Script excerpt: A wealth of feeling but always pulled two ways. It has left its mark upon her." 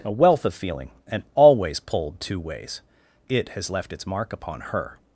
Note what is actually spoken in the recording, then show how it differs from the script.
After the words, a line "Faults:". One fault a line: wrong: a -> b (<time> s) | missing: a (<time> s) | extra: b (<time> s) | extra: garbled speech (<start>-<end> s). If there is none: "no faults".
A wealth of feeling and always pulled two ways. It has left its mark upon her."
Faults:
wrong: but -> and (1.1 s)